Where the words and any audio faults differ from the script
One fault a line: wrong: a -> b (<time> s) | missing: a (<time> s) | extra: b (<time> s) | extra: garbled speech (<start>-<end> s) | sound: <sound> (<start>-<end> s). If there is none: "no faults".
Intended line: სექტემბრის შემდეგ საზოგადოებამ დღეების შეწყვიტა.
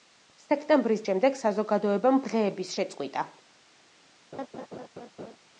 sound: laugh (4.3-5.4 s)